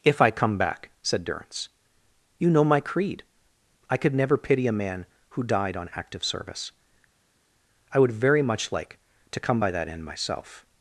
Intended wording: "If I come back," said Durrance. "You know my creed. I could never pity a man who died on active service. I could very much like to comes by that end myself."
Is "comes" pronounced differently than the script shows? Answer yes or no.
yes